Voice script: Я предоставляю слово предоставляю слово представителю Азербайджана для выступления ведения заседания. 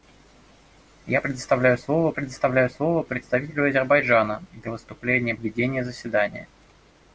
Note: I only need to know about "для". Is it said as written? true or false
true